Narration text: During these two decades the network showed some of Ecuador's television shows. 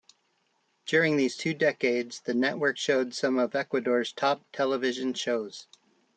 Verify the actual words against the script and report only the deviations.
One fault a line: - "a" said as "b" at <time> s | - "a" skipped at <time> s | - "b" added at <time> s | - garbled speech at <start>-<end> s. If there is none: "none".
- "top" added at 4.1 s